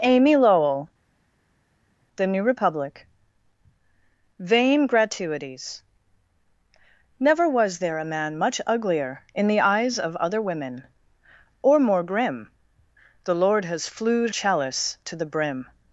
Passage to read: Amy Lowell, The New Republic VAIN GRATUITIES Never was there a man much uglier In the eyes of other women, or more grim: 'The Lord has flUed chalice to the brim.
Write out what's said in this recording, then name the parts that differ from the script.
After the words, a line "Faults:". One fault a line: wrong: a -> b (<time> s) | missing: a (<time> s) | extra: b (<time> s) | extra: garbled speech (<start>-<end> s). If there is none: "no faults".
Amy Lowell, The New Republic VAIN GRATUITIES Never was there a man much uglier In the eyes of other women, or more grim: 'The Lord has flUed chalice to the brim.
Faults:
no faults